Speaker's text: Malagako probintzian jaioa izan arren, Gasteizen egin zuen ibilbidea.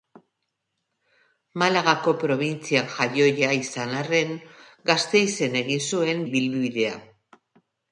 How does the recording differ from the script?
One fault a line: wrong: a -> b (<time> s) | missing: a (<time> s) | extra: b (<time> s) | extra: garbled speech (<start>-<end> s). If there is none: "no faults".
no faults